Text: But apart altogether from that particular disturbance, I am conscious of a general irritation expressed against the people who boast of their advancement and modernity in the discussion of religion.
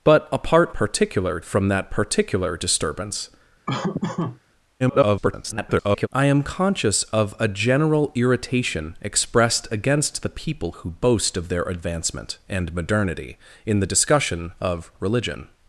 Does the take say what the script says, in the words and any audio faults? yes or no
no